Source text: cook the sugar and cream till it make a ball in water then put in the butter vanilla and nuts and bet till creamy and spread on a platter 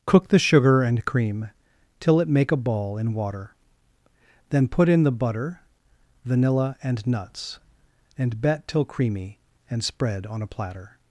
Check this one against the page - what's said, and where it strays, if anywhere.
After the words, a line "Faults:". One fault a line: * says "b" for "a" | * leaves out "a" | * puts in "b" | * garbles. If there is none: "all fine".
cook the sugar and cream till it make a ball in water then put in the butter vanilla and nuts and bet till creamy and spread on a platter
Faults:
all fine